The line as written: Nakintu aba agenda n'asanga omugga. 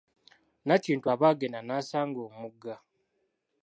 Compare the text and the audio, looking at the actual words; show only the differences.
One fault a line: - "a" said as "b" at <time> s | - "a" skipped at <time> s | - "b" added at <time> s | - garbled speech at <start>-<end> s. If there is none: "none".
none